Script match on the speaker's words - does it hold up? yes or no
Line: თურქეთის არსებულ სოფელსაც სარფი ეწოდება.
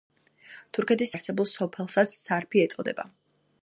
yes